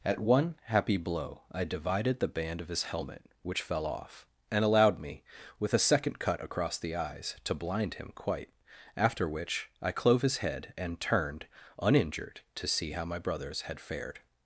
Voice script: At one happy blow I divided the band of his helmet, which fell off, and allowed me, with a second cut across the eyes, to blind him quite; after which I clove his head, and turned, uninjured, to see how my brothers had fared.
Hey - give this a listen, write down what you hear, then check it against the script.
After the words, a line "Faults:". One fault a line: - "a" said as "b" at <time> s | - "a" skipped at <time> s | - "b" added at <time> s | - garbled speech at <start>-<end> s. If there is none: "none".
At one happy blow I divided the band of his helmet, which fell off, and allowed me, with a second cut across the eyes, to blind him quite; after which I clove his head, and turned, uninjured, to see how my brothers had fared.
Faults:
none